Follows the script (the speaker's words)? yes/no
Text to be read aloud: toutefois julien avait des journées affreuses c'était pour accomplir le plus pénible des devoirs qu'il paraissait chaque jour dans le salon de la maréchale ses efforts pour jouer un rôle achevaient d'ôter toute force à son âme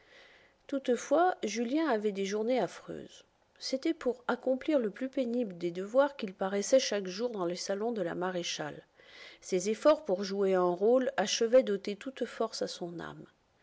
yes